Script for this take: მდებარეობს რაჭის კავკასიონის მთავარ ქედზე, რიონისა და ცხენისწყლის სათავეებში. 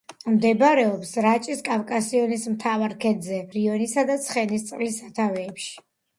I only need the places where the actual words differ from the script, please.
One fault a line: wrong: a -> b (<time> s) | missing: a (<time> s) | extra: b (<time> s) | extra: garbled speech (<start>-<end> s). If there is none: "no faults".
no faults